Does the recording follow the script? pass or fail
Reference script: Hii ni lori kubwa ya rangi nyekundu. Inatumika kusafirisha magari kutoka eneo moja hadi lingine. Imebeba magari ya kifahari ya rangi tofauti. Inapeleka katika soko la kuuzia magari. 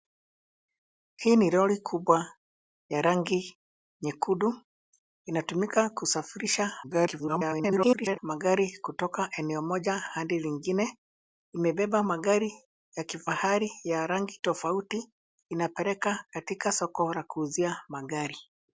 fail